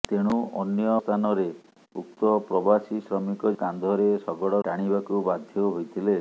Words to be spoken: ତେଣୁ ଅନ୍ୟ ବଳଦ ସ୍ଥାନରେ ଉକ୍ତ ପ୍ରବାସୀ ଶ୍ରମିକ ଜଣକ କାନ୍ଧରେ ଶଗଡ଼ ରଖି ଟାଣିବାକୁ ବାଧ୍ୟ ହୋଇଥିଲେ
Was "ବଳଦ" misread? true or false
true